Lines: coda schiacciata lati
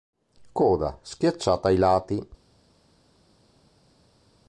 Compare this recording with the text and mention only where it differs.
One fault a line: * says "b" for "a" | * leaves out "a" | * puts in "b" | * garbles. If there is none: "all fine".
* puts in "ai"